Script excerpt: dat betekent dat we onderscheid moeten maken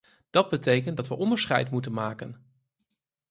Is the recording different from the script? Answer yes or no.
no